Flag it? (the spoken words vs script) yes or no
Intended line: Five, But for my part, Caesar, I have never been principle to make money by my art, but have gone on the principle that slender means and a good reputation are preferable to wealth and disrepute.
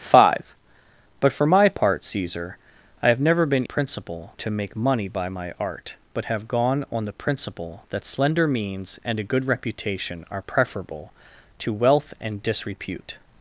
no